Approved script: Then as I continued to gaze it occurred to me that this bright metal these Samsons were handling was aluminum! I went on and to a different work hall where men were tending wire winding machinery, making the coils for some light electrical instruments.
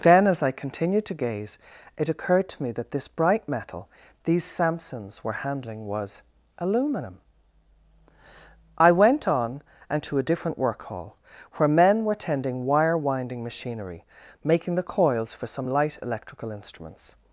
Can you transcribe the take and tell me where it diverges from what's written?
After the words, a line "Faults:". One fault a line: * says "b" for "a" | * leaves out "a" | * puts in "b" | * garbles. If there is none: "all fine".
Then as I continued to gaze it occurred to me that this bright metal these Samsons were handling was aluminum! I went on and to a different work hall where men were tending wire winding machinery, making the coils for some light electrical instruments.
Faults:
all fine